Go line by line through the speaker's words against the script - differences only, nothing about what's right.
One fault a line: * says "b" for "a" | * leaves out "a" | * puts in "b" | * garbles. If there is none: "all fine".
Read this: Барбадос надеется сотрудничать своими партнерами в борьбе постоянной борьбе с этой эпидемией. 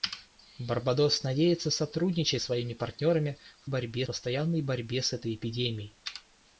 all fine